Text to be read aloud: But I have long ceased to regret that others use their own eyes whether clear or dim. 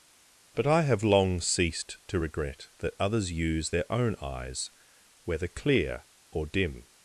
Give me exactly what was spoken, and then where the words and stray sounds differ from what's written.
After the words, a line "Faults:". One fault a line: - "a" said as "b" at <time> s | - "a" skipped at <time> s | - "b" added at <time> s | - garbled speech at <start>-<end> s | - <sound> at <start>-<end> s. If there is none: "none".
But I have long ceased to regret that others use their own eyes whether clear or dim.
Faults:
none